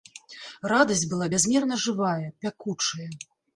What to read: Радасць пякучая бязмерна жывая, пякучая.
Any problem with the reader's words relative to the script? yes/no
yes